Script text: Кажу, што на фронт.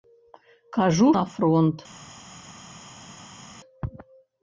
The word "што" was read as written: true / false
false